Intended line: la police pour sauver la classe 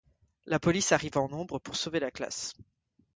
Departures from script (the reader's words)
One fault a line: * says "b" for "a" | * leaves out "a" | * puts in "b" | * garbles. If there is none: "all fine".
* puts in "arrive en nombre"